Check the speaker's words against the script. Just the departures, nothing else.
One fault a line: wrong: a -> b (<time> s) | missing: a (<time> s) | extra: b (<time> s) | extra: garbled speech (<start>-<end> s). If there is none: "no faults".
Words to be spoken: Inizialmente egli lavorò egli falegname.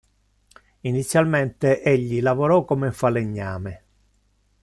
wrong: egli -> come (2.6 s)